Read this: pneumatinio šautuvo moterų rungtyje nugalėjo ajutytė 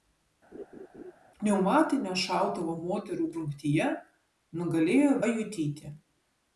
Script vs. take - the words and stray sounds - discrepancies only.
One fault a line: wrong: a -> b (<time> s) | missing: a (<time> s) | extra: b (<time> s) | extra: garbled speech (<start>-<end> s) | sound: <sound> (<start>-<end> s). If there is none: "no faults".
sound: laugh (0.5-1.1 s)